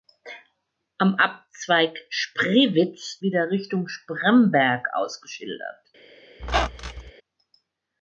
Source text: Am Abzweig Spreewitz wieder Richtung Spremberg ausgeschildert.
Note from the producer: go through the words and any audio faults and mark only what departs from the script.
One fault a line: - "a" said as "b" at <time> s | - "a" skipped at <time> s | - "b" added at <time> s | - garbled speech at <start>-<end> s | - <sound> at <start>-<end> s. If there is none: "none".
- squeak at 6.4-7.1 s